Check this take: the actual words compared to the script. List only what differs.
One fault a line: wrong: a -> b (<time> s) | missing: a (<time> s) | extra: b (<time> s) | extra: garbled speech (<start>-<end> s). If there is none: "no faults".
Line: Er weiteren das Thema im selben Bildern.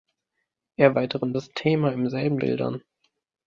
no faults